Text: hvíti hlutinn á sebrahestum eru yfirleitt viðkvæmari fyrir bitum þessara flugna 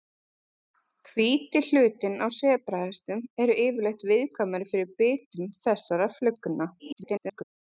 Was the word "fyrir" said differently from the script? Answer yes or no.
no